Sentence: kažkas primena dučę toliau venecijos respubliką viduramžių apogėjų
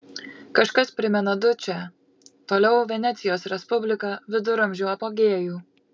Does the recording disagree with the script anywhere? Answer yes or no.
no